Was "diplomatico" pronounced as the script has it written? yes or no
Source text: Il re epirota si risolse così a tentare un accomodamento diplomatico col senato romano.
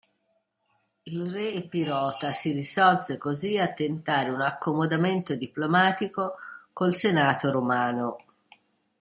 yes